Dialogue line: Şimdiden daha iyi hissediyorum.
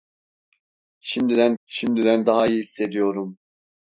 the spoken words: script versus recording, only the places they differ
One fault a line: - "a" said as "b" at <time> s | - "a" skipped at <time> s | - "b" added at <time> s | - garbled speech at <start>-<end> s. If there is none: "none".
- "şimdiden" added at 1.6 s